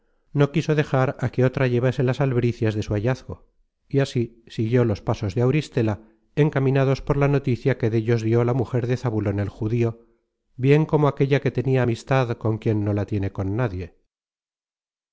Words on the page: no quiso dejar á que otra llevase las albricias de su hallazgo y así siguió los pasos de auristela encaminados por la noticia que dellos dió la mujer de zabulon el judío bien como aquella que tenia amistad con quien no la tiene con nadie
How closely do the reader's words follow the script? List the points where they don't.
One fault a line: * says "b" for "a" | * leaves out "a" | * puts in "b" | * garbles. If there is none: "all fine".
all fine